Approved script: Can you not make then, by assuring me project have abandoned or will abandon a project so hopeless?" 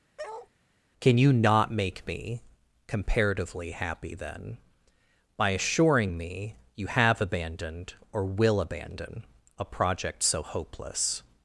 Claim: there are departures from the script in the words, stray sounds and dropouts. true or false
true